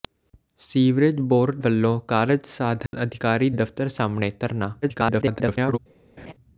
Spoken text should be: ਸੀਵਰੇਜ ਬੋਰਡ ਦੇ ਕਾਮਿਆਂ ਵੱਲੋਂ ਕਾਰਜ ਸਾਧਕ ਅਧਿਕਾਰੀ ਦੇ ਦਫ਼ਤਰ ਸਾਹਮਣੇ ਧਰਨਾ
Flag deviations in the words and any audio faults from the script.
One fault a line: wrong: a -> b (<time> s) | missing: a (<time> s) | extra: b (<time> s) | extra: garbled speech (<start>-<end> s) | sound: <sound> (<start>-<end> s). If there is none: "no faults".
missing: ਦੇ ਕਾਮਿਆਂ (1.6 s)
sound: dropout (2.9-2.9 s)
missing: ਦੇ (3.5 s)
extra: garbled speech (4.8-5.8 s)
sound: laugh (6.2-6.3 s)